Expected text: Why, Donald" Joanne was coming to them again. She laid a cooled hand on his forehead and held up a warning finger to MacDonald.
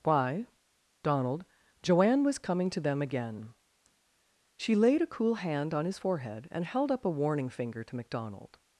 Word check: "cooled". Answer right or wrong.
wrong